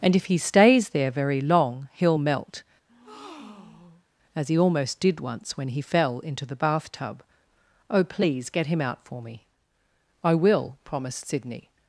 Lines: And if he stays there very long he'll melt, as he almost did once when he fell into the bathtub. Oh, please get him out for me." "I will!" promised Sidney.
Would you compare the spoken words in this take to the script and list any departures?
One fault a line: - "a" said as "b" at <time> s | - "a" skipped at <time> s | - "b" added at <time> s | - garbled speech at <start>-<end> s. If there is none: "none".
none